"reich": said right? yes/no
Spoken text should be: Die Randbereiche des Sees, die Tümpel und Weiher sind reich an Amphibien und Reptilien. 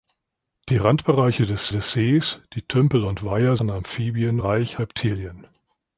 no